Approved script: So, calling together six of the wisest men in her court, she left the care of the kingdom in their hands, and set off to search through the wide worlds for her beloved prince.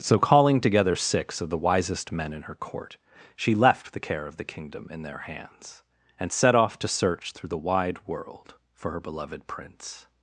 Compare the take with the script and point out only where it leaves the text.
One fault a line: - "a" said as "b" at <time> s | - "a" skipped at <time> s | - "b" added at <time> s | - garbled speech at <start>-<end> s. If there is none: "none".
- "worlds" said as "world" at 8.1 s